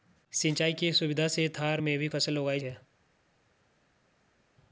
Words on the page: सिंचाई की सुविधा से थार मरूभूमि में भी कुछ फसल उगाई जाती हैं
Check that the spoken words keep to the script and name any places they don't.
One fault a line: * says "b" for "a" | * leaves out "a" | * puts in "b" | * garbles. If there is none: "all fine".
* leaves out "मरूभूमि"
* leaves out "कुछ"
* leaves out "जाती"